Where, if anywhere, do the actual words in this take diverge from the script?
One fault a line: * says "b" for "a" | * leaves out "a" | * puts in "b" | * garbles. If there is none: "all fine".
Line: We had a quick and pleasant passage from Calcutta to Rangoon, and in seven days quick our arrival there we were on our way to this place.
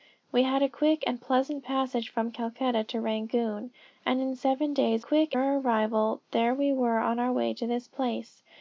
all fine